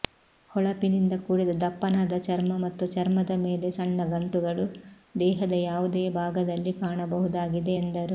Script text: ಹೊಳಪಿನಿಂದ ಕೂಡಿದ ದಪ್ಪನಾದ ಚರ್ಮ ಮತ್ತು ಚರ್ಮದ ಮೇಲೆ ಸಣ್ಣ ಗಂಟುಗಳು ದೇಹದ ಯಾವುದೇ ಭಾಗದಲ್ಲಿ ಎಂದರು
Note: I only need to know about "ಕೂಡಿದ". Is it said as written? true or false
true